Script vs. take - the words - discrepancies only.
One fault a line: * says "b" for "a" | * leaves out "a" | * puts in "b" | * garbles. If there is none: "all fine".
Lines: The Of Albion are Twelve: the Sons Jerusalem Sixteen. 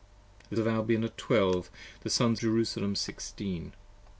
all fine